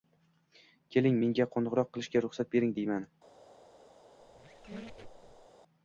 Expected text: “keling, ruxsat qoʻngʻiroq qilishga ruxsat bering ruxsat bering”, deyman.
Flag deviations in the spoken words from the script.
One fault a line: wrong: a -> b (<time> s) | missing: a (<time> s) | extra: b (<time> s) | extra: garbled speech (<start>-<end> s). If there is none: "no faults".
wrong: ruxsat -> menga (1.2 s)
missing: ruxsat bering (2.8 s)